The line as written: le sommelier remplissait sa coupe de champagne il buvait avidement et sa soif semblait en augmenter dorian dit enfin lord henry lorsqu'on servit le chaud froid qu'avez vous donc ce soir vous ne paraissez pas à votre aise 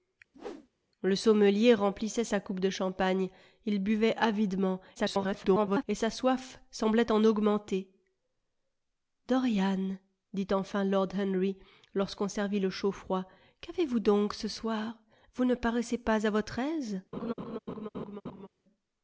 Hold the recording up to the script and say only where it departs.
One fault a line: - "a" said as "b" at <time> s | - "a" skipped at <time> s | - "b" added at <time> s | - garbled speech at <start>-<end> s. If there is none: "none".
- garbled speech at 5.0-5.8 s